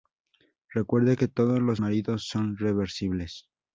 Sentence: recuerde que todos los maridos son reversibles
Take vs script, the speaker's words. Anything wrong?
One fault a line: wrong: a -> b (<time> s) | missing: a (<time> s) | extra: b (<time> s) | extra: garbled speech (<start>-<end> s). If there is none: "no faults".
no faults